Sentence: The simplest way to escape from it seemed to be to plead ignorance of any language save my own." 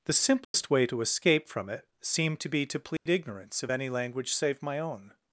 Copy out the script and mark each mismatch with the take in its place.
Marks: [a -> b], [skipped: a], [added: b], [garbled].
The simplest way to escape from it seemed to be to plead ignorance of any language save my own."